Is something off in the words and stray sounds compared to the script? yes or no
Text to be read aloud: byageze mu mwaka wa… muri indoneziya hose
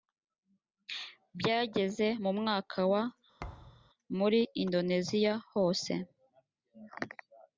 yes